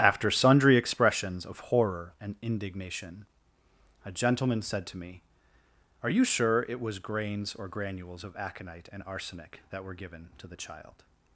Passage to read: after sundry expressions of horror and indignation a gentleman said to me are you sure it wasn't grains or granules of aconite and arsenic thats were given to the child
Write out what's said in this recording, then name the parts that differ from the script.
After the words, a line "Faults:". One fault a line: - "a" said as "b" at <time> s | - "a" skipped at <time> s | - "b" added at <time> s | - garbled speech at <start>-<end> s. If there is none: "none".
after sundry expressions of horror and indignation a gentleman said to me are you sure it was grains or granules of aconite and arsenic that were given to the child
Faults:
- "wasn't" said as "was" at 6.8 s
- "thats" said as "that" at 9.7 s